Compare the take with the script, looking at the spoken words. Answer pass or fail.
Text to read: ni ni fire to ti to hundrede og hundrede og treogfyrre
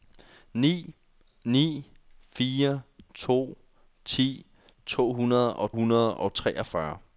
pass